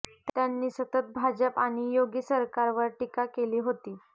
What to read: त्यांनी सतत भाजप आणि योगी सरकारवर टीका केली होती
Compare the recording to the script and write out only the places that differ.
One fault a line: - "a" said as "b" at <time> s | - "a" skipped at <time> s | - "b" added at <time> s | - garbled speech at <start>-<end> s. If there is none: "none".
none